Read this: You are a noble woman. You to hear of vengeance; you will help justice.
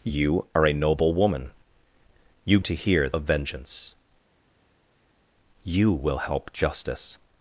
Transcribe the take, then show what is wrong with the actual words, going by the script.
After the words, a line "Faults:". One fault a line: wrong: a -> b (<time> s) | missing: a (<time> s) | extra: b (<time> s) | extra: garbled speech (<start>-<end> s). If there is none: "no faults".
You are a noble woman. You to hear of vengeance; you will help justice.
Faults:
no faults